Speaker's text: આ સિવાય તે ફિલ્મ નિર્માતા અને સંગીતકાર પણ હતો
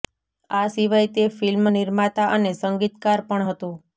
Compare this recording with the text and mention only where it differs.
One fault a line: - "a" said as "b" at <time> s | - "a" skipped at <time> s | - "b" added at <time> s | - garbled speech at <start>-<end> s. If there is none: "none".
none